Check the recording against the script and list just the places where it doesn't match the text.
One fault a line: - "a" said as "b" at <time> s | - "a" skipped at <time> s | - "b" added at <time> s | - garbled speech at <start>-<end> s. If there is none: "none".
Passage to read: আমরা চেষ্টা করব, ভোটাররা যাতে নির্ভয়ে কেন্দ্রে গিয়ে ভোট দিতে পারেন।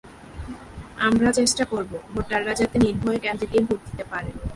none